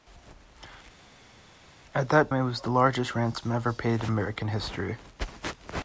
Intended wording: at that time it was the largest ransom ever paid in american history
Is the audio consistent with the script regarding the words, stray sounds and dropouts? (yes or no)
no